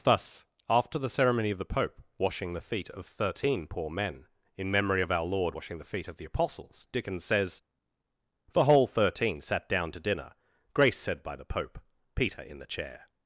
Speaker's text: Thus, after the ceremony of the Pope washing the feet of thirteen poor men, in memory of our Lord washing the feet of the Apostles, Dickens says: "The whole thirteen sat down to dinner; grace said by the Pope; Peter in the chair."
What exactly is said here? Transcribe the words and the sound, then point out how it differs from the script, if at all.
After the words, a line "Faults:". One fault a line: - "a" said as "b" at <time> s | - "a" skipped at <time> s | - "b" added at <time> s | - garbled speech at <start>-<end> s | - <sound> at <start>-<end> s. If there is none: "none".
Thus, after the ceremony of the Pope washing the feet of thirteen poor men, in memory of our Lord washing the feet of the Apostles, Dickens says: "The whole thirteen sat down to dinner; grace said by the Pope; Peter in the chair."
Faults:
none